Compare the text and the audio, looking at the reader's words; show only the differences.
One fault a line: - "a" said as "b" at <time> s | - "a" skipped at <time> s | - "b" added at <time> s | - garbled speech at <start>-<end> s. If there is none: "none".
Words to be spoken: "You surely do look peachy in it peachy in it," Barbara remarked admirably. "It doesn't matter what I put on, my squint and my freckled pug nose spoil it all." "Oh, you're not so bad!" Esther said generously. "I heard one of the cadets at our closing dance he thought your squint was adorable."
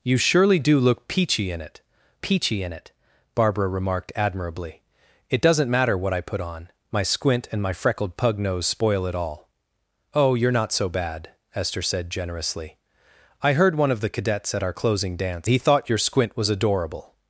none